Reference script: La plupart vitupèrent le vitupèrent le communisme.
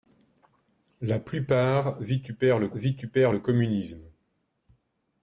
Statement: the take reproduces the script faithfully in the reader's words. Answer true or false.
true